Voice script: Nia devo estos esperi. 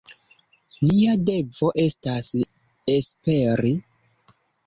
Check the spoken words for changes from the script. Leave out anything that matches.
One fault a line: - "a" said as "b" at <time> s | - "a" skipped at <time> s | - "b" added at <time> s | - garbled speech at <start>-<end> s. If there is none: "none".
- "estos" said as "estas" at 1.8 s